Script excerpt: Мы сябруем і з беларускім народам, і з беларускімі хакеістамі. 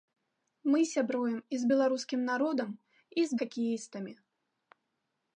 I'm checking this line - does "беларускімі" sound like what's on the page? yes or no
no